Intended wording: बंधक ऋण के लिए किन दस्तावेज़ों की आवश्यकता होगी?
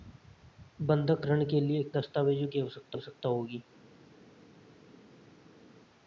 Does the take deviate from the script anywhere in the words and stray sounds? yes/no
yes